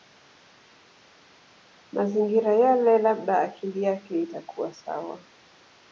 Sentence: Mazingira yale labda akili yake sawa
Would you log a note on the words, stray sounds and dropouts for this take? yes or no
yes